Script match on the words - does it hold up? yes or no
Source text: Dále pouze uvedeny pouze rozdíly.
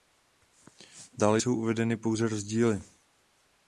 no